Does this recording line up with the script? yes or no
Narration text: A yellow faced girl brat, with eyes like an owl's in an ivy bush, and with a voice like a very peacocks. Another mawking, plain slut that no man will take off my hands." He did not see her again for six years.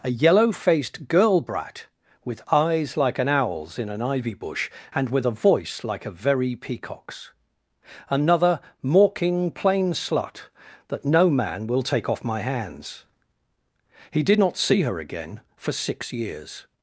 yes